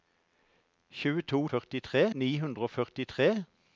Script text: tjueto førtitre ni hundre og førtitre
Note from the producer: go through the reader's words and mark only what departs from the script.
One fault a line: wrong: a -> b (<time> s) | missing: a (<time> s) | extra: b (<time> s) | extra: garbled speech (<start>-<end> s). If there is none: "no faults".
no faults